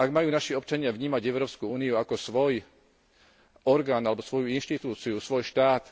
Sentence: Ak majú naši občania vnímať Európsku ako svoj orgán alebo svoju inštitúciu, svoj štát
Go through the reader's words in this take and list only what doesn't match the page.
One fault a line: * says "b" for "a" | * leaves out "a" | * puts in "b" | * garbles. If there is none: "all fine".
* puts in "úniu"